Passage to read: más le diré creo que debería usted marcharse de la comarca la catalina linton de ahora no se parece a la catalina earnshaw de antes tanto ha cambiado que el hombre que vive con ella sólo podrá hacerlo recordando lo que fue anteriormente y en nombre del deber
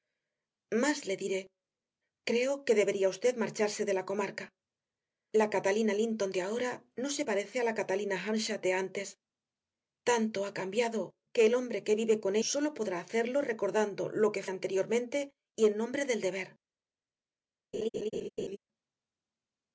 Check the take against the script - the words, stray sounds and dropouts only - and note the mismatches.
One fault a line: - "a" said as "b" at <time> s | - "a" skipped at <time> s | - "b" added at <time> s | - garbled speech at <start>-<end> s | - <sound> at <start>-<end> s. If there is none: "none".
- "ella" skipped at 12.3 s
- "fue" skipped at 14.4 s
- laugh at 17.7-18.6 s